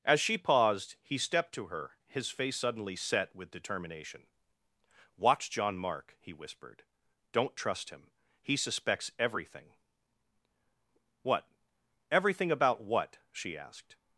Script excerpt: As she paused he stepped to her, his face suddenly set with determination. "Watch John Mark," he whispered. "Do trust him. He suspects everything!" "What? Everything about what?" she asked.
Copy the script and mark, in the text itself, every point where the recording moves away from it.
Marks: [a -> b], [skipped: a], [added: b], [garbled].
As she paused he stepped to her, his face suddenly set with determination. "Watch John Mark," he whispered. ["Do -> Don't] trust him. He suspects everything!" "What? Everything about what?" she asked.